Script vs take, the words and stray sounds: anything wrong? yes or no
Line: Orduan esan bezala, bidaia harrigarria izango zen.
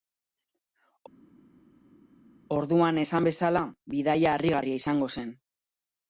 no